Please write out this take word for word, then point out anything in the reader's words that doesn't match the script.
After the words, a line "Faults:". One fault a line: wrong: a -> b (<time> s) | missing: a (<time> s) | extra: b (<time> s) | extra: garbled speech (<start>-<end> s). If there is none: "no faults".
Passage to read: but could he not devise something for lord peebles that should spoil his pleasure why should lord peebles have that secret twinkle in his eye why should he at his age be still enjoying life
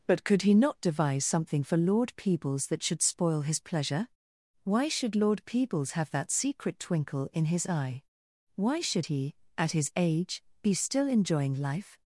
but could he not devise something for lord peebles that should spoil his pleasure why should lord peebles have that secret twinkle in his eye why should he at his age be still enjoying life
Faults:
no faults